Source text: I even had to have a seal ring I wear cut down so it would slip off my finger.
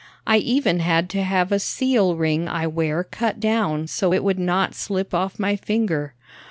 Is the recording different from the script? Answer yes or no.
yes